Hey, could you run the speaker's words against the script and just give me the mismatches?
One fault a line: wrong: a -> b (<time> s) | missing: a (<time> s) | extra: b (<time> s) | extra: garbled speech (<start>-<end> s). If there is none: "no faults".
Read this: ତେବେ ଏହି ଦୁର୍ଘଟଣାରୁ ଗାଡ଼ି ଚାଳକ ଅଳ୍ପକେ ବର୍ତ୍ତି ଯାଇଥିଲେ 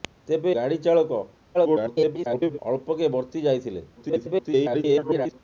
missing: ଏହି ଦୁର୍ଘଟଣାରୁ (0.5 s)
extra: garbled speech (1.5-2.6 s)
extra: garbled speech (4.0-5.4 s)